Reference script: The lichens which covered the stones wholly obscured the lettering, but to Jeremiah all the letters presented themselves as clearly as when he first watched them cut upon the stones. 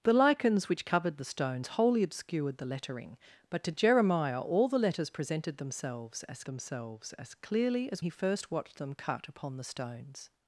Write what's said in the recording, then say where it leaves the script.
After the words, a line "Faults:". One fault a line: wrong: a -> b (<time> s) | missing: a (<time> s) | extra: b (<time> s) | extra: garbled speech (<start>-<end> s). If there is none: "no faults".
The lichens which covered the stones wholly obscured the lettering, but to Jeremiah all the letters presented themselves as themselves as clearly as he first watched them cut upon the stones.
Faults:
extra: themselves as (6.4 s)
missing: when (8.0 s)